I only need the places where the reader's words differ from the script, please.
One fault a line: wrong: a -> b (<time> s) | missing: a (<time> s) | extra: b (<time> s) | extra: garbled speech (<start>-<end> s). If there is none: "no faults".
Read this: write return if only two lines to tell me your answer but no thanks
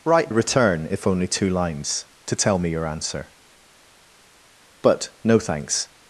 no faults